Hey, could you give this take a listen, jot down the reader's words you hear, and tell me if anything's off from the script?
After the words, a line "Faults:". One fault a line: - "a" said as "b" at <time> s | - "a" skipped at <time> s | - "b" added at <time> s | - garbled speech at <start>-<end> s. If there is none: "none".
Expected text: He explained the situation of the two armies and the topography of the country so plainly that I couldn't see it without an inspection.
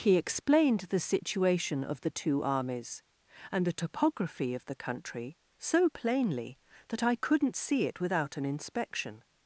He explained the situation of the two armies and the topography of the country so plainly that I couldn't see it without an inspection.
Faults:
none